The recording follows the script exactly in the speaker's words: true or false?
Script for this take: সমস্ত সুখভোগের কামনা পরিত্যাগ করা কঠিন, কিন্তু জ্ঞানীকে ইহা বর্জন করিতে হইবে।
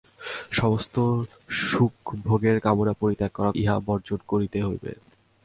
false